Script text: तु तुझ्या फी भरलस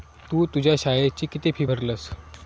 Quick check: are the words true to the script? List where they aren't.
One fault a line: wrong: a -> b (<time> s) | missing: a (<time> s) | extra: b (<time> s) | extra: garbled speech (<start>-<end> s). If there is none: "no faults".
extra: शाळेची किती (0.8 s)